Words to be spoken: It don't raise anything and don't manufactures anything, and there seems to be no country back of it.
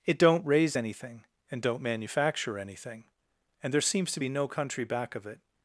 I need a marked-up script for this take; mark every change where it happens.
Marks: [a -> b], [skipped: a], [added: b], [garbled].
It don't raise anything and don't [manufactures -> manufacture] anything, and there seems to be no country back of it.